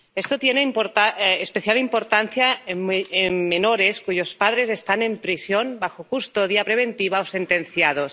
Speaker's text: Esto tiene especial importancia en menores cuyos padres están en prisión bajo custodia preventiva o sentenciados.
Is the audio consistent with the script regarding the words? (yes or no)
yes